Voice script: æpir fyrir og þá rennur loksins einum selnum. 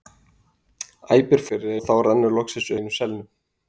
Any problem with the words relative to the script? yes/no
no